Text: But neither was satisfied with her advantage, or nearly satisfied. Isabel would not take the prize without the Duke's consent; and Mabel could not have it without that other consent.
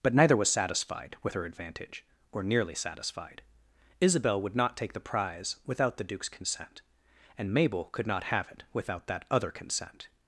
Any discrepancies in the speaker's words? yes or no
no